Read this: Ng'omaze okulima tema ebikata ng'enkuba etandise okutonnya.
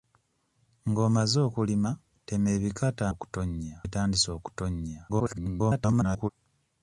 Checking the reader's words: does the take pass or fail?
fail